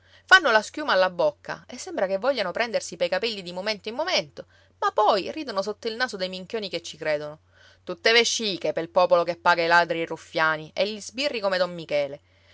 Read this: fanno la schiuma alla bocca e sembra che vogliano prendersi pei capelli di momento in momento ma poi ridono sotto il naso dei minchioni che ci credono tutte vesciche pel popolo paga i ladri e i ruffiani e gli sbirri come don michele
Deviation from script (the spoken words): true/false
true